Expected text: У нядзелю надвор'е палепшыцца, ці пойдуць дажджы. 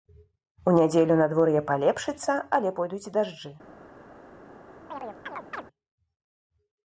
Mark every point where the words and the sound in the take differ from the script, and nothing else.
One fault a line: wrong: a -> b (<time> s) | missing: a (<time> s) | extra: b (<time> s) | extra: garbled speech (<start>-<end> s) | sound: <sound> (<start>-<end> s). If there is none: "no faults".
wrong: ці -> але (2.6 s)
sound: chirp (4.9-5.6 s)